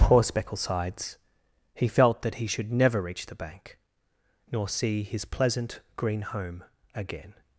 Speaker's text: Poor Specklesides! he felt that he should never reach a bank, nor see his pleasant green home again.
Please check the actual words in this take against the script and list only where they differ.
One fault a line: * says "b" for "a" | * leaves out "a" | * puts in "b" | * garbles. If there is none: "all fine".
* says "the" for "a"